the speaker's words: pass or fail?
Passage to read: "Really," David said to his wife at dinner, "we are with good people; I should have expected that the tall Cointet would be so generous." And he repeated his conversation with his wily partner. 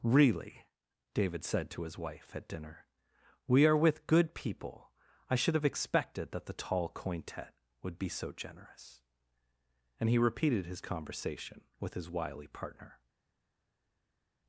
pass